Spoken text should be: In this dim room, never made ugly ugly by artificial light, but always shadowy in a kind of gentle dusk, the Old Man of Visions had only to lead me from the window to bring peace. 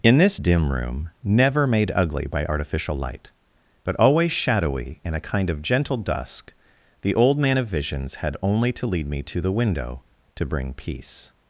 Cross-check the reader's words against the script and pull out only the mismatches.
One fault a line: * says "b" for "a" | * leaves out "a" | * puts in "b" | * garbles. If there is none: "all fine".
* leaves out "ugly"
* says "to" for "from"